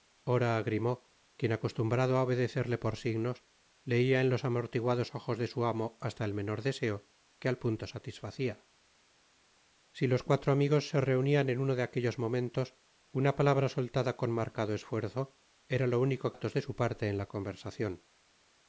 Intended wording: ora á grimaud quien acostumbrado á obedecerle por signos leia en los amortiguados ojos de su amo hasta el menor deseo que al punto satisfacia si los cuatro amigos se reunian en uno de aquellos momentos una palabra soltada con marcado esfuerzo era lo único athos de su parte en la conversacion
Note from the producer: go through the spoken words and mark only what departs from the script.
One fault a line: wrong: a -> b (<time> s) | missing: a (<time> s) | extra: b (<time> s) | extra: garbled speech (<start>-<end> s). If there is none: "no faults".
no faults